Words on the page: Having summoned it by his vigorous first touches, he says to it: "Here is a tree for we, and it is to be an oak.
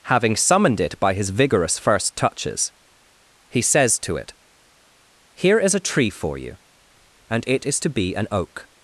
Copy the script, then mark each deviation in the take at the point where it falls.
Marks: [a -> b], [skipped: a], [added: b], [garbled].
Having summoned it by his vigorous first touches, he says to it: "Here is a tree for [we, -> you] and it is to be an oak.